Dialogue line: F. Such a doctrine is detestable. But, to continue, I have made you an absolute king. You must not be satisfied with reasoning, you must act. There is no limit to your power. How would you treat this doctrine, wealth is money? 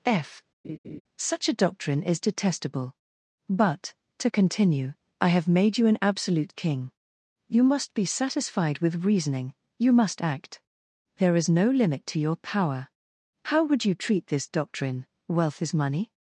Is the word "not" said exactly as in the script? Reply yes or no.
no